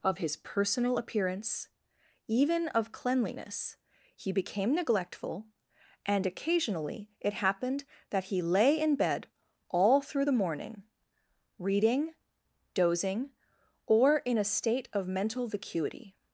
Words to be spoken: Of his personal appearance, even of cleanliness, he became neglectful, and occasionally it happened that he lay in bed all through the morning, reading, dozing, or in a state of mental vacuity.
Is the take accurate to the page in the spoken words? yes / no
yes